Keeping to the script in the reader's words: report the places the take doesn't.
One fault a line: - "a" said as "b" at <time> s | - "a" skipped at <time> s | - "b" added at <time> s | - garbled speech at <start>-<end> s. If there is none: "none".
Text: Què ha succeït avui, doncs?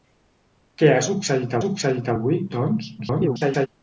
- "succeït" added at 1.6 s
- garbled speech at 3.0-3.7 s